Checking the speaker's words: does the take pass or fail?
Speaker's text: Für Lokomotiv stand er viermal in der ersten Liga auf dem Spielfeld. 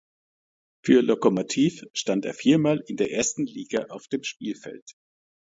pass